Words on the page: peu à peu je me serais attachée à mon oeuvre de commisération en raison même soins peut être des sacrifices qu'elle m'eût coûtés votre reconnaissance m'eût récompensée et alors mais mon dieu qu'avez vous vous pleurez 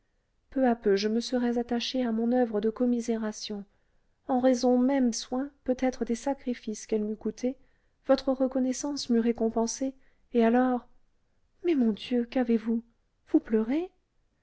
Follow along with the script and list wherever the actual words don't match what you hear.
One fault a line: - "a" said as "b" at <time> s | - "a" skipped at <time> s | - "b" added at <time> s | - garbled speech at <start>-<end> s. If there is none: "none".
none